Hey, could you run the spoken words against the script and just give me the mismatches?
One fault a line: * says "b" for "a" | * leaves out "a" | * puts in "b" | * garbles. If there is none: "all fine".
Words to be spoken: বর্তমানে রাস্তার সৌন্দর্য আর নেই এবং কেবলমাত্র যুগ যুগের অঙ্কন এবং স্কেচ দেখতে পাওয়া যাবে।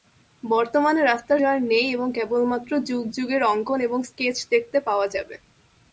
* leaves out "সৌন্দর্য"